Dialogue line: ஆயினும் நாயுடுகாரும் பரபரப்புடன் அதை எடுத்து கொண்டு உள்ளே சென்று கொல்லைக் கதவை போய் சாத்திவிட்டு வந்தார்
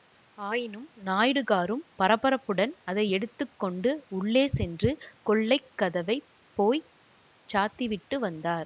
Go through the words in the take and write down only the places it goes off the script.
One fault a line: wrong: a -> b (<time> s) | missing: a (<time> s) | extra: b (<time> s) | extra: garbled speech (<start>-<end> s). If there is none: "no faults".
no faults